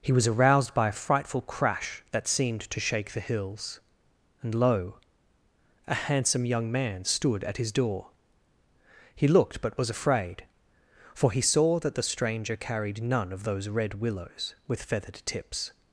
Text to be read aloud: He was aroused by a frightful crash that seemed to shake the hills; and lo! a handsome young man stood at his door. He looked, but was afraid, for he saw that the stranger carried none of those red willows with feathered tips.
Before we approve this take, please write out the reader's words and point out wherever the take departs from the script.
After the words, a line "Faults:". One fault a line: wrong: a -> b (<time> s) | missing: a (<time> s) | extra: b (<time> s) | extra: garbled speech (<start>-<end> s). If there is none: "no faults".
He was aroused by a frightful crash that seemed to shake the hills; and lo! a handsome young man stood at his door. He looked, but was afraid, for he saw that the stranger carried none of those red willows with feathered tips.
Faults:
no faults